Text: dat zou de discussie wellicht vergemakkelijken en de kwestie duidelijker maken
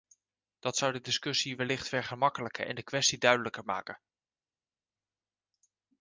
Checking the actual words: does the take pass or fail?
pass